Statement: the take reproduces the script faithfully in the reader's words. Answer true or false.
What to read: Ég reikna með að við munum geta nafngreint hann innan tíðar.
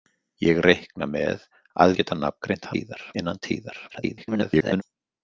false